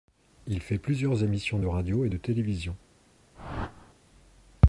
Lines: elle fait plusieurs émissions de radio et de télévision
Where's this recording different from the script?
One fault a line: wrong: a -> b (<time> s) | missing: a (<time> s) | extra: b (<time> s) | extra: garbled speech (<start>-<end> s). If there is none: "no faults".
wrong: elle -> il (0.5 s)